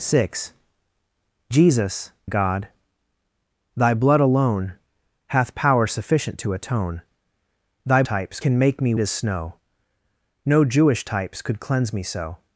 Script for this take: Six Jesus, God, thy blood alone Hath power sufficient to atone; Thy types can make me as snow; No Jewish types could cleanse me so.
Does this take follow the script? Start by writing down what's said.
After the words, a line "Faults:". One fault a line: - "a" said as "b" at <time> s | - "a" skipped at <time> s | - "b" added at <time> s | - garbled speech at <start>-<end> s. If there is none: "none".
Six Jesus, God, thy blood alone Hath power sufficient to atone; Thy types can make me as snow; No Jewish types could cleanse me so.
Faults:
none